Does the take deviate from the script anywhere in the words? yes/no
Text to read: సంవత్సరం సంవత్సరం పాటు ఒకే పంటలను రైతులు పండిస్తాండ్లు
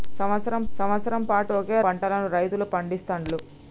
no